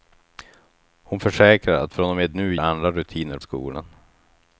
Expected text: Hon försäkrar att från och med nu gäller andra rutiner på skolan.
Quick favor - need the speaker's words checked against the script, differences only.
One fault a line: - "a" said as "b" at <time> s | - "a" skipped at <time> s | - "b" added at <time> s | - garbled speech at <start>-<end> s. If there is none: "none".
- "gäller" skipped at 2.5 s
- "på" skipped at 3.4 s